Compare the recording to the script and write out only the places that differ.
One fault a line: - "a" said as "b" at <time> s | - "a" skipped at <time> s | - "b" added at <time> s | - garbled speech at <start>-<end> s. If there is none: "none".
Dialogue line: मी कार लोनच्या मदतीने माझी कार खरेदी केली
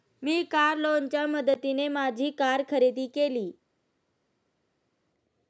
none